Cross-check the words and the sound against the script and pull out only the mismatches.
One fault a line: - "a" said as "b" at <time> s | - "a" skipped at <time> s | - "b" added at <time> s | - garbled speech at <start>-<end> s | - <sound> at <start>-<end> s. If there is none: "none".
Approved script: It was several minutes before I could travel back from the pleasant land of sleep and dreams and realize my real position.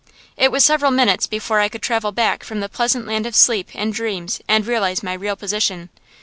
none